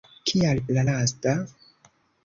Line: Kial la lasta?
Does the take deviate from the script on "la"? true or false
false